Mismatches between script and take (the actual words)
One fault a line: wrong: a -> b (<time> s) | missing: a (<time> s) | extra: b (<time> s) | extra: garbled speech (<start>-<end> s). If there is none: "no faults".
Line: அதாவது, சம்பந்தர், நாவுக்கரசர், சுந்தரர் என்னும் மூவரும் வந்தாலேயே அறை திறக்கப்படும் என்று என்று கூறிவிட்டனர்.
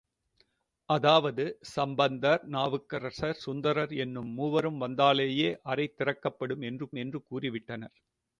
no faults